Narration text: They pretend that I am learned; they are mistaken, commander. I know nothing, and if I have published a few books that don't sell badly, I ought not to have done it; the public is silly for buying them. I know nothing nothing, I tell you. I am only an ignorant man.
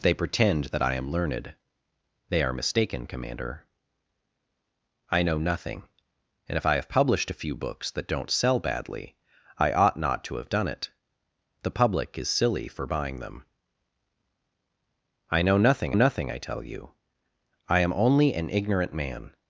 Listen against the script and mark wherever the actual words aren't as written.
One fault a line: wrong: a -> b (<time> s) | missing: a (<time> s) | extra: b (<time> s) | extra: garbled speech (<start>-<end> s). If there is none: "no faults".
no faults